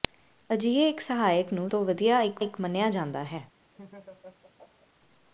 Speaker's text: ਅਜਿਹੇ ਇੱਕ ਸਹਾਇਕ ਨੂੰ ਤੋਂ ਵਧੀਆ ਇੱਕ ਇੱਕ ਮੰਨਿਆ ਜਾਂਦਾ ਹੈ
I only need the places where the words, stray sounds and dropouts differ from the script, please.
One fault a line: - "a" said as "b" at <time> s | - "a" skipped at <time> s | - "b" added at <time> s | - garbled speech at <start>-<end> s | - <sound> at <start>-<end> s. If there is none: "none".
- laugh at 3.7-4.9 s